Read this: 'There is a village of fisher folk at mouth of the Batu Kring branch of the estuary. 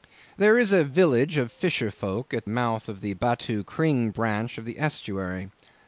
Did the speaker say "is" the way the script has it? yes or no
yes